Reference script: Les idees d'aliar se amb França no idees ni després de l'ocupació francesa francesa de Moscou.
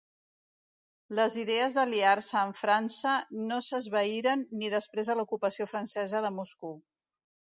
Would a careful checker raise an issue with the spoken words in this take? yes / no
yes